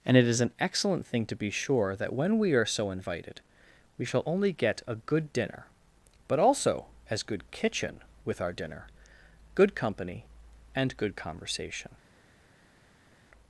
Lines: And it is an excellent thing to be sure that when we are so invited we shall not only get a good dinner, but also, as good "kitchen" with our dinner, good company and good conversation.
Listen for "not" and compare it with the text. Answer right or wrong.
wrong